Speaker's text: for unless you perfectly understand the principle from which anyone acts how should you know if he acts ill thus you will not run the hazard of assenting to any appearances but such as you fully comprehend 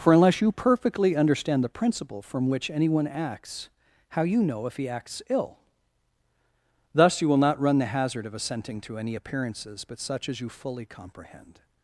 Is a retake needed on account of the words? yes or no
yes